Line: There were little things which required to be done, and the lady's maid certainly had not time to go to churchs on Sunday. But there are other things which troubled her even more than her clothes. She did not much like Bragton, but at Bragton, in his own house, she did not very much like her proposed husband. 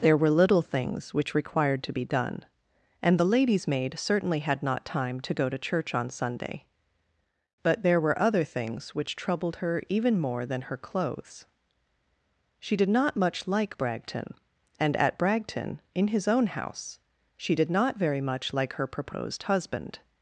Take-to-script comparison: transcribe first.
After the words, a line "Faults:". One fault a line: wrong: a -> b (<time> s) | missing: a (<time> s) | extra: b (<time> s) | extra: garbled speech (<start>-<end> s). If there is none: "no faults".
There were little things which required to be done, and the lady's maid certainly had not time to go to church on Sunday. But there were other things which troubled her even more than her clothes. She did not much like Bragton, and at Bragton, in his own house, she did not very much like her proposed husband.
Faults:
wrong: churchs -> church (5.6 s)
wrong: are -> were (8.0 s)
wrong: but -> and (14.8 s)